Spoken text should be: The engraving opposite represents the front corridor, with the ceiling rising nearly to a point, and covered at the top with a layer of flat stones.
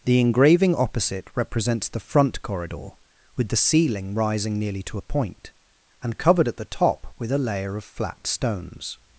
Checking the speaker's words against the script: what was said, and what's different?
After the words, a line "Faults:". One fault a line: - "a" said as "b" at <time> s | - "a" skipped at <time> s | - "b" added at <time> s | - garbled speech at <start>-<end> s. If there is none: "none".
The engraving opposite represents the front corridor, with the ceiling rising nearly to a point, and covered at the top with a layer of flat stones.
Faults:
none